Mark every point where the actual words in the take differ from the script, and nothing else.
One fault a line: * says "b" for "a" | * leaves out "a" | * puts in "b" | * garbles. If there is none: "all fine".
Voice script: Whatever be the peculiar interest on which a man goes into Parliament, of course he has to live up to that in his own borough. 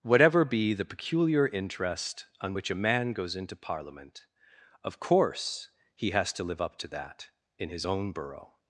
all fine